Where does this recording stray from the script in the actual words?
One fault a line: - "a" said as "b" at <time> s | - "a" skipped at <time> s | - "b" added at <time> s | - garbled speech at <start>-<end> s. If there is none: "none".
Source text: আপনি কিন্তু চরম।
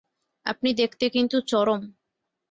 - "দেখতে" added at 0.7 s